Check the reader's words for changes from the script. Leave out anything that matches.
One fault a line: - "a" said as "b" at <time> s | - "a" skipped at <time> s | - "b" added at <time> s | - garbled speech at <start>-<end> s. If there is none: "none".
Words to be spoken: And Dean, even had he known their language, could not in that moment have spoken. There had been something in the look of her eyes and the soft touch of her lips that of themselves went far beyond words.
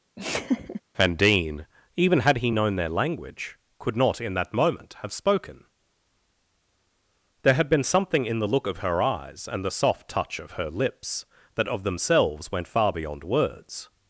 none